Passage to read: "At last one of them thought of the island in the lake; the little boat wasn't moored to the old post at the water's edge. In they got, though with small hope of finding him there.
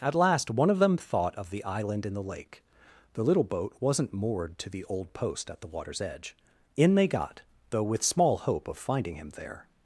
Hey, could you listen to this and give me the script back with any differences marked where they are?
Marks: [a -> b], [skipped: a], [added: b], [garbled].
"At last one of them thought of the island in the lake; the little boat wasn't moored to the old post at the water's edge. In they got, though with small hope of finding him there.